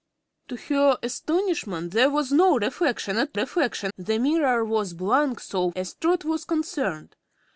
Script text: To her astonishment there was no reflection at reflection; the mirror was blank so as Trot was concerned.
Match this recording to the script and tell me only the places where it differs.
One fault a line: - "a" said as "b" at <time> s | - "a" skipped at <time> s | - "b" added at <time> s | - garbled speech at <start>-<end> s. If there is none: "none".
none